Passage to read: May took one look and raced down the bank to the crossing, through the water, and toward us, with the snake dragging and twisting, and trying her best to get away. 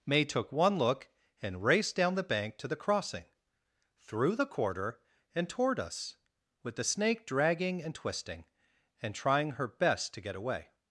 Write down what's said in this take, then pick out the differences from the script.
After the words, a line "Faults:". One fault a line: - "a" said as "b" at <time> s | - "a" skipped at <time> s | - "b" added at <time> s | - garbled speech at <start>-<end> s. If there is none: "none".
May took one look and raced down the bank to the crossing, through the quarter, and toward us, with the snake dragging and twisting, and trying her best to get away.
Faults:
- "water" said as "quarter" at 4.5 s